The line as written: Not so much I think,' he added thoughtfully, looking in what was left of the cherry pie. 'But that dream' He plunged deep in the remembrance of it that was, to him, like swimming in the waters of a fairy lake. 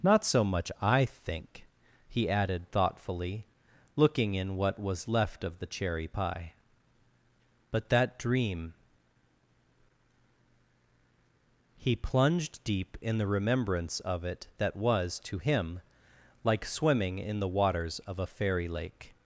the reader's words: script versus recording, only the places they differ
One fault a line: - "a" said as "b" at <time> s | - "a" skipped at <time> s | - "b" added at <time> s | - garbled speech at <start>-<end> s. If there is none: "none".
none